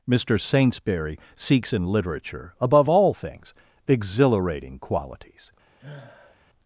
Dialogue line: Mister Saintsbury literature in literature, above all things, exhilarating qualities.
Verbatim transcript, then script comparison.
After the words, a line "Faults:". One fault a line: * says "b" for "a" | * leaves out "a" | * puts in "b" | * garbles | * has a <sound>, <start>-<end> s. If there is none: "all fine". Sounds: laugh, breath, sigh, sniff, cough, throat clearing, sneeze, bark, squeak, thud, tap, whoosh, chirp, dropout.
Mister Saintsbury seeks in literature, above all things, exhilarating qualities.
Faults:
* says "seeks" for "literature"
* has a sniff, 5.8-6.4 s